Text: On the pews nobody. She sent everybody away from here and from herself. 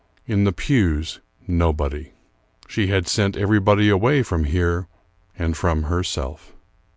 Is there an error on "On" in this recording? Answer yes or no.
yes